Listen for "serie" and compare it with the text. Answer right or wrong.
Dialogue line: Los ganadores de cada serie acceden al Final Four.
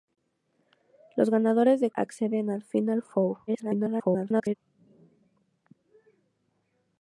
wrong